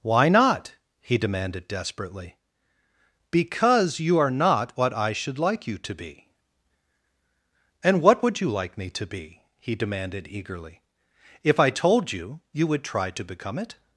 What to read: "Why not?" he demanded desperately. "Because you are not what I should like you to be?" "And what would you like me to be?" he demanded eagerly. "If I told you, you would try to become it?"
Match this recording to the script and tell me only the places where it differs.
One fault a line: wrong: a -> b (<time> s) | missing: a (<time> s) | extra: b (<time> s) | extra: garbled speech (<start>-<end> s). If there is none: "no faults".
no faults